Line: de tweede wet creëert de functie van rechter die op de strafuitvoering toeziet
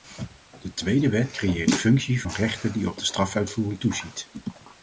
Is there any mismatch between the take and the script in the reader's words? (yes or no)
no